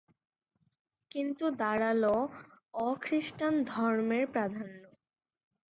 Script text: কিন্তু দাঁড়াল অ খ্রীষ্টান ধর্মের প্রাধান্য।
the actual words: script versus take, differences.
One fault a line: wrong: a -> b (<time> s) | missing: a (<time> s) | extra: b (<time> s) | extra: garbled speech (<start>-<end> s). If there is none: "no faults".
no faults